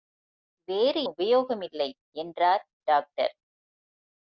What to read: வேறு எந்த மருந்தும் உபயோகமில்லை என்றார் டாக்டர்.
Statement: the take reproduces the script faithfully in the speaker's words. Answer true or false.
false